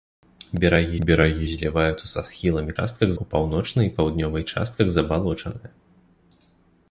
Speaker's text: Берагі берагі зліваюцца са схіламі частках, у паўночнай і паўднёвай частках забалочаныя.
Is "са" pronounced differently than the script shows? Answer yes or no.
no